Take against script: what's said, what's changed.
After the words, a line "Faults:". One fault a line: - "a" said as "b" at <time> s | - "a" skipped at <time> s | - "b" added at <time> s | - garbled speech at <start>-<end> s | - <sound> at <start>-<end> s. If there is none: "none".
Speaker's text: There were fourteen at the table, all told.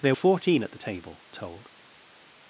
There fourteen at the table, told.
Faults:
- "were" skipped at 0.1 s
- "all" skipped at 1.3 s